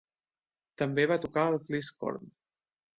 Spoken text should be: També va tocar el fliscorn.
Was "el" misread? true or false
false